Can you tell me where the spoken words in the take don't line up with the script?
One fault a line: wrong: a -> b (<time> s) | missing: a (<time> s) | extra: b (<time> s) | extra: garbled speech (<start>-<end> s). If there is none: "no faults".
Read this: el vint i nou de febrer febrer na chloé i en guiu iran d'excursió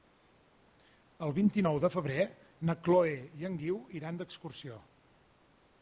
missing: febrer (2.3 s)